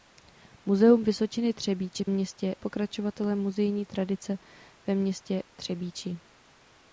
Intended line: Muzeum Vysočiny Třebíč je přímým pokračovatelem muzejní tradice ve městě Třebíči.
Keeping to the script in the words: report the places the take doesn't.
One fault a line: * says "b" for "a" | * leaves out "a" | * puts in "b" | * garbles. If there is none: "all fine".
* says "městě" for "přímým"